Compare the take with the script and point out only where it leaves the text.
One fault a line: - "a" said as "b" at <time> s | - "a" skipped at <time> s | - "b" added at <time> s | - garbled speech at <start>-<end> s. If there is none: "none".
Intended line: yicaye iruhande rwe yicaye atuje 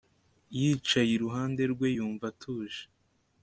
- "yicaye" said as "yumva" at 2.0 s